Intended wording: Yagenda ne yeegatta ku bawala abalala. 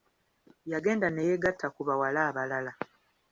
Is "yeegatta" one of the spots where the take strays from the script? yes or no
no